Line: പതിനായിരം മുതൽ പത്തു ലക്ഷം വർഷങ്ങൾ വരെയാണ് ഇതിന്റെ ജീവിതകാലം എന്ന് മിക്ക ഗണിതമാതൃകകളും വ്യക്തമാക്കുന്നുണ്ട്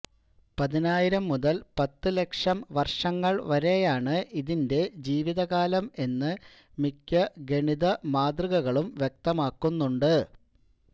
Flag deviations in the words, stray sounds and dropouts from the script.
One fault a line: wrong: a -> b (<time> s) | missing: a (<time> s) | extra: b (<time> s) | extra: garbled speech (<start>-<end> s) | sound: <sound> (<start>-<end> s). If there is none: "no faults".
no faults